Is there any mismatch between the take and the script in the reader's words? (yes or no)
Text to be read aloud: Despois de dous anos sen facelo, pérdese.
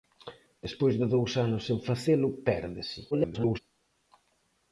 yes